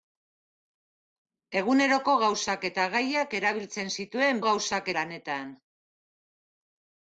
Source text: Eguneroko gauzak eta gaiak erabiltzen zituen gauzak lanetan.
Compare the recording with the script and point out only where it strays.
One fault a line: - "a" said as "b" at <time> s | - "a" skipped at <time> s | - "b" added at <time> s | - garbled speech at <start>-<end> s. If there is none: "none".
none